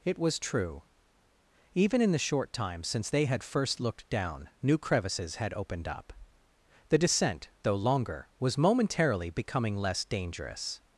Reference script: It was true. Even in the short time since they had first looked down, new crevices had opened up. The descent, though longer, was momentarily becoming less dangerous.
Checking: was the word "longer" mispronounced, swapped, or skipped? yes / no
no